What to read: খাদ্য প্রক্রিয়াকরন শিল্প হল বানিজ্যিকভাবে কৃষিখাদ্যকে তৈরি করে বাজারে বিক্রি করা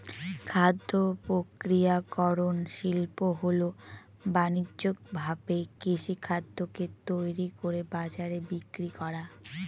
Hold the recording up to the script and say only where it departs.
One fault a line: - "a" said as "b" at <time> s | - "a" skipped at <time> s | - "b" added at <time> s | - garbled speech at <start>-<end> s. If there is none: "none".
none